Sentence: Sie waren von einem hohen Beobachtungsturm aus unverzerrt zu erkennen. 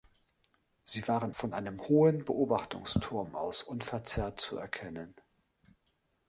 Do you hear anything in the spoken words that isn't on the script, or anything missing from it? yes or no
no